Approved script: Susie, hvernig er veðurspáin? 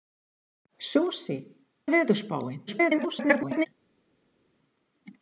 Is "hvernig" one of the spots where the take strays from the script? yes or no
yes